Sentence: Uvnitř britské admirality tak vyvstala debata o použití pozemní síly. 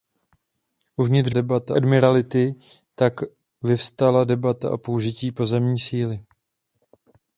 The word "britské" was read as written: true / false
false